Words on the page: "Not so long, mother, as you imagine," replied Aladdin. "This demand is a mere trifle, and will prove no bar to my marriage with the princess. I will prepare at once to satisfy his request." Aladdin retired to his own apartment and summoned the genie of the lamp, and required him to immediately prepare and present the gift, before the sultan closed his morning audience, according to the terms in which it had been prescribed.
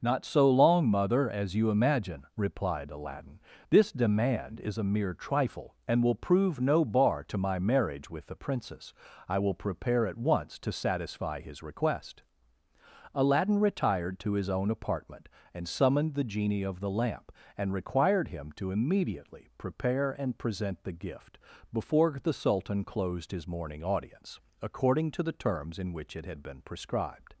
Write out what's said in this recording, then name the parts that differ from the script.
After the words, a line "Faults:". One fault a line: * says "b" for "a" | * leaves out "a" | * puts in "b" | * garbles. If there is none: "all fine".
"Not so long, mother, as you imagine," replied Aladdin. "This demand is a mere trifle, and will prove no bar to my marriage with the princess. I will prepare at once to satisfy his request." Aladdin retired to his own apartment and summoned the genie of the lamp, and required him to immediately prepare and present the gift, before the sultan closed his morning audience, according to the terms in which it had been prescribed.
Faults:
all fine